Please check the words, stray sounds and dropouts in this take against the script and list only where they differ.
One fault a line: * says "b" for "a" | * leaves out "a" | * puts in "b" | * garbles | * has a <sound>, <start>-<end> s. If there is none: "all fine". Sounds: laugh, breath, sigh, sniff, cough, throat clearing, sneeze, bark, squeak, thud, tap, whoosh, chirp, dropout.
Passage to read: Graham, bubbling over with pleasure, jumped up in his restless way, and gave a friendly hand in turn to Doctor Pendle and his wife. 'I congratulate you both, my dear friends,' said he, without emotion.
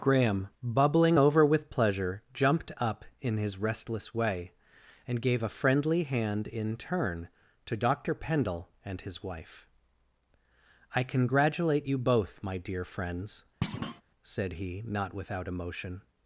* has a thud, 13.6-14.0 s
* puts in "not"